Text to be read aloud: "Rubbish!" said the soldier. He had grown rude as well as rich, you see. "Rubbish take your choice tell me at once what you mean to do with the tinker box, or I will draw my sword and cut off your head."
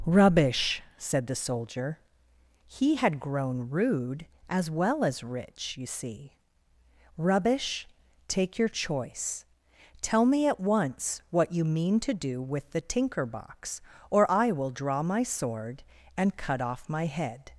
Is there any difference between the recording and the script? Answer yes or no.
yes